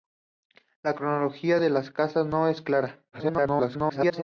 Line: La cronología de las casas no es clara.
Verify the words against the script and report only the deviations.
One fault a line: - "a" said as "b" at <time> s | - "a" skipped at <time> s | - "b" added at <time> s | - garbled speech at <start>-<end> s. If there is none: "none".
- garbled speech at 3.1-4.2 s